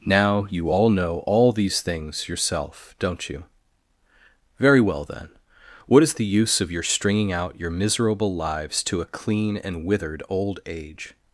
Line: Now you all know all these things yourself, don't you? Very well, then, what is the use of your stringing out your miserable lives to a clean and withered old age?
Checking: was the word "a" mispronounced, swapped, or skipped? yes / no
no